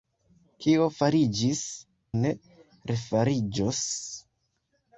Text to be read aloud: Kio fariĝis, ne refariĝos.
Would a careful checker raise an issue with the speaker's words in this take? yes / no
no